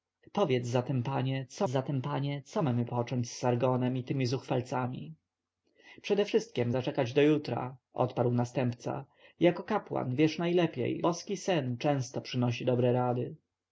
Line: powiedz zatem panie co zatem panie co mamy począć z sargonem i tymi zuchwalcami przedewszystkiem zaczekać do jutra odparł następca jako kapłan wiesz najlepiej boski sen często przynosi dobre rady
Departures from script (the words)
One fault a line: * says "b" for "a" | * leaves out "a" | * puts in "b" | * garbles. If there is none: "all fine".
all fine